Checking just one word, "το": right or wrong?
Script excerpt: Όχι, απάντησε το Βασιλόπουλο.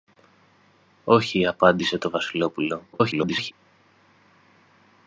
right